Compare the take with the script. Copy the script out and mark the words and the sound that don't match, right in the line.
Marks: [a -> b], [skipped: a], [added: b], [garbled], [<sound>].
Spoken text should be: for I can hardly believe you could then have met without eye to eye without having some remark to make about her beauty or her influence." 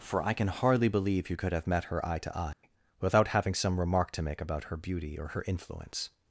for I can hardly believe you could [skipped: then] have met [without -> her] eye to eye [dropout] without having some remark to make about her beauty or her influence."